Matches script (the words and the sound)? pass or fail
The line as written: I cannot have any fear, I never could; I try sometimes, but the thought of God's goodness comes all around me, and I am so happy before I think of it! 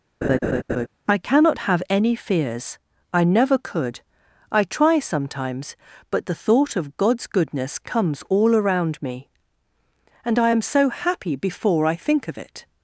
fail